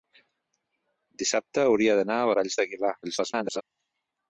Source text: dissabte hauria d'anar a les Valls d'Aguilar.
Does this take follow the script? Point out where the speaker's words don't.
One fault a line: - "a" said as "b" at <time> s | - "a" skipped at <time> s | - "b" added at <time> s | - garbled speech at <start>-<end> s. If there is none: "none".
- "les" skipped at 2.3 s
- garbled speech at 3.0-3.6 s